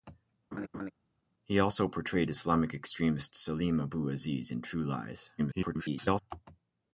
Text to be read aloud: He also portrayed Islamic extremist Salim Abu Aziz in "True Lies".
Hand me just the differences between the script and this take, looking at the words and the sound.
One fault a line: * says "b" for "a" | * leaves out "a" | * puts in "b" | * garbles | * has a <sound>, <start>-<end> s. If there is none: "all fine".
* has a laugh, 0.5-0.9 s
* garbles